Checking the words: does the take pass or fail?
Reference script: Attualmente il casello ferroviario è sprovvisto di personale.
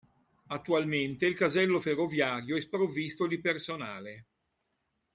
pass